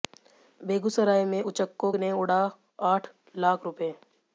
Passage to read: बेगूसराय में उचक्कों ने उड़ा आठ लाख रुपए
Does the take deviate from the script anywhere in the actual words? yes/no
no